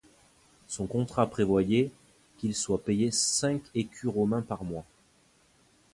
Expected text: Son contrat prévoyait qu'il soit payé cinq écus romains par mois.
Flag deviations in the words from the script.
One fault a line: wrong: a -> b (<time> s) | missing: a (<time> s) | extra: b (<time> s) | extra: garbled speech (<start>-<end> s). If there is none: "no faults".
no faults